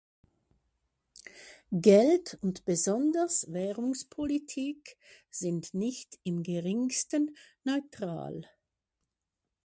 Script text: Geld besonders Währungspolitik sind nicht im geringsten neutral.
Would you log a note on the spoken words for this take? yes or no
yes